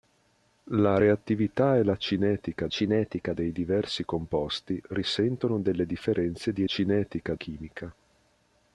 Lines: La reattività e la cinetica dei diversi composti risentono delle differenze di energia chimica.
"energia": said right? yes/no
no